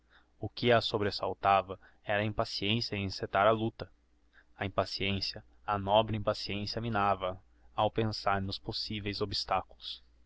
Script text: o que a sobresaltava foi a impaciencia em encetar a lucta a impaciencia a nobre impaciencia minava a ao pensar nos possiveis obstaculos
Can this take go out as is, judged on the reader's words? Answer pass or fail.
fail